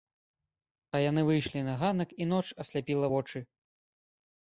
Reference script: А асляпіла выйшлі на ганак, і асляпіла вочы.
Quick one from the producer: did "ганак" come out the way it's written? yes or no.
yes